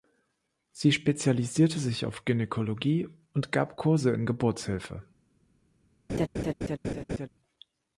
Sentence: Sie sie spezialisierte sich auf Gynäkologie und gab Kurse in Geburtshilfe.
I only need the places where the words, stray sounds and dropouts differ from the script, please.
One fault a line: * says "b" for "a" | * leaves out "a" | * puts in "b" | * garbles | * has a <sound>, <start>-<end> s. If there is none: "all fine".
* leaves out "sie"
* has a laugh, 6.1-7.3 s